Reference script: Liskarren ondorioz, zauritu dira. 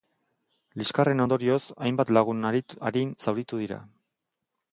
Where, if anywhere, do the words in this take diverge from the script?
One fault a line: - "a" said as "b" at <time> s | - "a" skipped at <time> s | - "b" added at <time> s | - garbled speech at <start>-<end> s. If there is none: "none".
- "hainbat lagun arin" added at 1.9 s